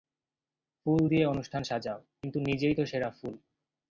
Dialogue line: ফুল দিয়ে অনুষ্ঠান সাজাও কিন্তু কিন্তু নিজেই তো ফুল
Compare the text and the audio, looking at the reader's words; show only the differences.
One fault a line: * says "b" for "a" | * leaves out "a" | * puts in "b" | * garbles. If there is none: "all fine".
* leaves out "কিন্তু"
* puts in "সেরা"